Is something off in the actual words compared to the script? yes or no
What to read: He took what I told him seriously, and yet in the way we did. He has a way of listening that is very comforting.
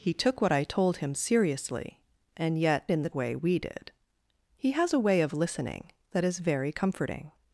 no